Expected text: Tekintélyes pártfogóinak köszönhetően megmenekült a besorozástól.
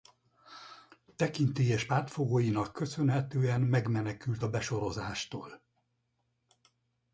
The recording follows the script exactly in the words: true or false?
true